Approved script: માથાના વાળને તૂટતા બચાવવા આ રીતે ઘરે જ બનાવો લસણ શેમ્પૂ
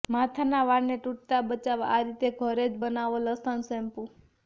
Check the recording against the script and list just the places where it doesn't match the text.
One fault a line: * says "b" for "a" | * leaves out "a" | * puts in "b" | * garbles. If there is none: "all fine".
all fine